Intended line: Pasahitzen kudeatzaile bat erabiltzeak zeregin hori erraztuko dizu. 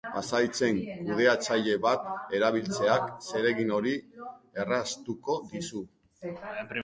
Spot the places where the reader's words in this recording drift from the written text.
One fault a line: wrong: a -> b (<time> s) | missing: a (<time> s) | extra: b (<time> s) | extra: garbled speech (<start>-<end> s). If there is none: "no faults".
no faults